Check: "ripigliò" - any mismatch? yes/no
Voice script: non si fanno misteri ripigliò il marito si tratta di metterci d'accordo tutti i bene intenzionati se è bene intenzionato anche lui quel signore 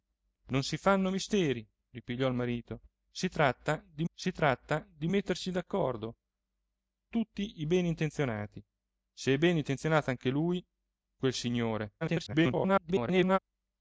no